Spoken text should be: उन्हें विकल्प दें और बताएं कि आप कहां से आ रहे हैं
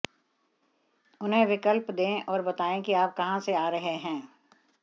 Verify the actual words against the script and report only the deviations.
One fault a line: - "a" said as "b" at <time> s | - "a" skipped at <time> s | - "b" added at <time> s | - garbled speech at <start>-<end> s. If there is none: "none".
none